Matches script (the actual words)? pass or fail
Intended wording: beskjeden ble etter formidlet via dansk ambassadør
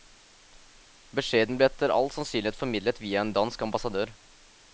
fail